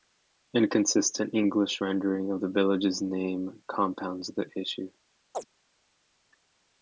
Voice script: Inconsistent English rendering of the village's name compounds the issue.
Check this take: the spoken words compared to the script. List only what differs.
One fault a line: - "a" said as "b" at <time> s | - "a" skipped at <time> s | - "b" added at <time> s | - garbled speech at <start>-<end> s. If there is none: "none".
none